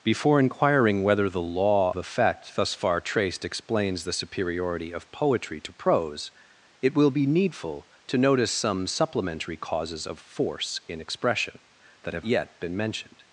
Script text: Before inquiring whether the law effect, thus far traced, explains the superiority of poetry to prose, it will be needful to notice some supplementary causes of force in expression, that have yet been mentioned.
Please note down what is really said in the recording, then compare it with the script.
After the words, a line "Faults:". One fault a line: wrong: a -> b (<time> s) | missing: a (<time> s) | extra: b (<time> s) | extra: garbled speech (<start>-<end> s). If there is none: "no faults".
Before inquiring whether the law effect, thus far traced, explains the superiority of poetry to prose, it will be needful to notice some supplementary causes of force in expression, that have yet been mentioned.
Faults:
no faults